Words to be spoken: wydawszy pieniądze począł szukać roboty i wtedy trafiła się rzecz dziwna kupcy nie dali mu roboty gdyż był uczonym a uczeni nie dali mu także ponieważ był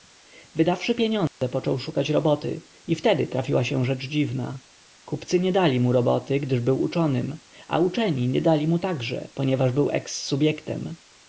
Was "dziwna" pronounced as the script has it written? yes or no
yes